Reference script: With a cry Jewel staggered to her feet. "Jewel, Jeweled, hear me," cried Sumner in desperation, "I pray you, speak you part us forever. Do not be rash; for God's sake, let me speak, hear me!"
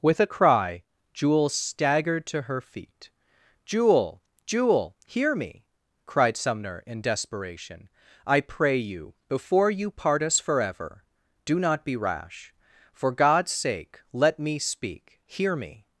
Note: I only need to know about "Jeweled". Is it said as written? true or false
false